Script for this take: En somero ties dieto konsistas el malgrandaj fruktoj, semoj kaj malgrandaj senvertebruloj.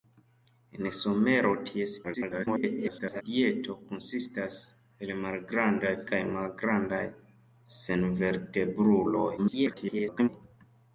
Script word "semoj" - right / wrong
wrong